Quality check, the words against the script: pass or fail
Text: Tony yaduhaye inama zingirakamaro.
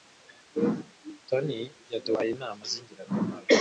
pass